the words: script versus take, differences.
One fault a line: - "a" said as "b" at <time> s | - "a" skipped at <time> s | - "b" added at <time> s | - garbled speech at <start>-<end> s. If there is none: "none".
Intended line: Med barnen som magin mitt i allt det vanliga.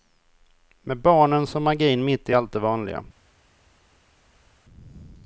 none